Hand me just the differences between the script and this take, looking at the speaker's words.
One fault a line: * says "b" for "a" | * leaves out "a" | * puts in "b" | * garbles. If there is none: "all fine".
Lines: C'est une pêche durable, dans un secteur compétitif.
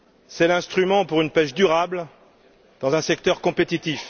* puts in "l'instrument pour"